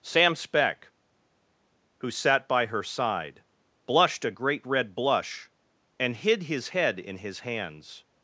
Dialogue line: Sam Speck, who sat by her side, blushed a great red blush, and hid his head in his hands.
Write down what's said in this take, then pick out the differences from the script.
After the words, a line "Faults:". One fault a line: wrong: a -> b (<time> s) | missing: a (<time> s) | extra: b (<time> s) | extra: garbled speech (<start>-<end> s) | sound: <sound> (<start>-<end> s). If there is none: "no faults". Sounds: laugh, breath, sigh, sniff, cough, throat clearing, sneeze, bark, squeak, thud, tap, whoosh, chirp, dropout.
Sam Speck, who sat by her side, blushed a great red blush, and hid his head in his hands.
Faults:
no faults